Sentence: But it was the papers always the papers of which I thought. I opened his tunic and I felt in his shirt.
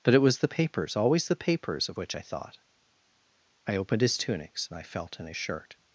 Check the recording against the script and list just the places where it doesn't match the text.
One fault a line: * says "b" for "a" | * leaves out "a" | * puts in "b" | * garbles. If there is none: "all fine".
* says "tunics" for "tunic"